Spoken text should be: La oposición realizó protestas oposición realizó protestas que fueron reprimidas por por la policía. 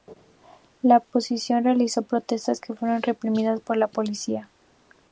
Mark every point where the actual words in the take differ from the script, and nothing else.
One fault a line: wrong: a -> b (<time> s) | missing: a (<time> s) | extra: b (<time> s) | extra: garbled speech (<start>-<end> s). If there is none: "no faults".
missing: oposición realizó protestas (2.6 s)
missing: por (3.8 s)